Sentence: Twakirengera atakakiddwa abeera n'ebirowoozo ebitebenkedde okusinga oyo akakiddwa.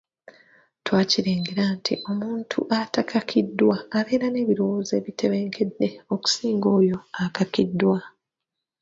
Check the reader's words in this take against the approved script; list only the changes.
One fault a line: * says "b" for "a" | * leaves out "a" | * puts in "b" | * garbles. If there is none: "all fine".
* puts in "nti omuntu"